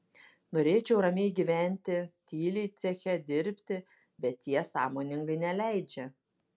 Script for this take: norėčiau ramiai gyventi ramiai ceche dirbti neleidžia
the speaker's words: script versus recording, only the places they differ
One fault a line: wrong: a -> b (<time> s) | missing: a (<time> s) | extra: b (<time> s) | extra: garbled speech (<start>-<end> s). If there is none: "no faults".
wrong: ramiai -> tyliai (2.3 s)
extra: bet jie sąmoningai (4.3 s)